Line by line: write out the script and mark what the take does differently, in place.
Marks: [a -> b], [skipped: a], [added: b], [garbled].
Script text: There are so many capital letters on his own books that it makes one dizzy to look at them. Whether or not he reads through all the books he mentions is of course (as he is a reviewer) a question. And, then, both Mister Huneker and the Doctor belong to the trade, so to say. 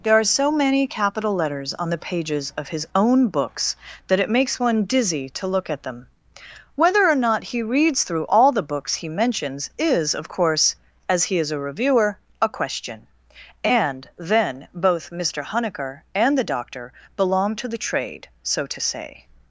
There are so many capital letters on [added: the pages of] his own books that it makes one dizzy to look at them. Whether or not he reads through all the books he mentions is of course (as he is a reviewer) a question. And, then, both Mister Huneker and the Doctor belong to the trade, so to say.